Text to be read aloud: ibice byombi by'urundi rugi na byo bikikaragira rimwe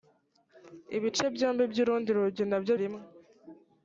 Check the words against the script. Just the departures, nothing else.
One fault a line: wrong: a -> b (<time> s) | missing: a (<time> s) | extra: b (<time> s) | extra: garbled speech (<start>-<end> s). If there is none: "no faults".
missing: bikikaragira (2.7 s)